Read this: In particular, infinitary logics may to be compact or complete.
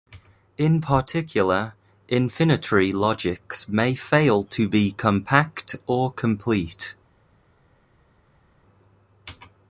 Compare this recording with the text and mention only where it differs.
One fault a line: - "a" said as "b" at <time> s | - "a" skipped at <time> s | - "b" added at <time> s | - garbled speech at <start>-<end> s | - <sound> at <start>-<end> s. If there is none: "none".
- "fail" added at 3.9 s